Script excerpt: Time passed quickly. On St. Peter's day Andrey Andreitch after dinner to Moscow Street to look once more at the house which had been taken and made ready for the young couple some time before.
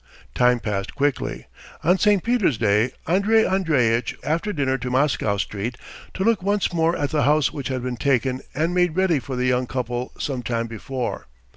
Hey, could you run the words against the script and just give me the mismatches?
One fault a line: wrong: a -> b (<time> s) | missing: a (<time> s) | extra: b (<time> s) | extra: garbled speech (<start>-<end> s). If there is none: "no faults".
no faults